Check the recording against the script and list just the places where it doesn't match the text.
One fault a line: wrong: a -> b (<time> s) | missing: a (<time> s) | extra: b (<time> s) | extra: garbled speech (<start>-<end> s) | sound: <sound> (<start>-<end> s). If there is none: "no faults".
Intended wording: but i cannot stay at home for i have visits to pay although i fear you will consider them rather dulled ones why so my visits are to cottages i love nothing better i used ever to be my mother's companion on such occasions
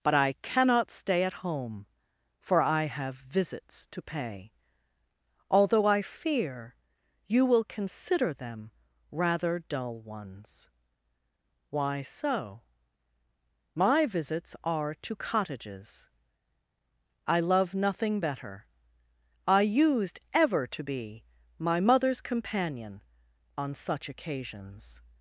wrong: dulled -> dull (9.6 s)